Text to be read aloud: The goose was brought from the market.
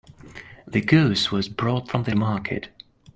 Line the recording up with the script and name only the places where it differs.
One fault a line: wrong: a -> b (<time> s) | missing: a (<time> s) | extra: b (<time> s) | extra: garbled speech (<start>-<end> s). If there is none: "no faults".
no faults